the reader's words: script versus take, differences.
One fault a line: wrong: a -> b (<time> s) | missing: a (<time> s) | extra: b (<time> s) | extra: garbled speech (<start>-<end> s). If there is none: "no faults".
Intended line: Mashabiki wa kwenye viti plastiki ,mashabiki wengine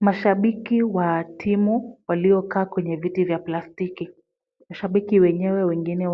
extra: timu waliokaa (1.2 s)
extra: vya (3.2 s)
extra: wenyewe (5.2 s)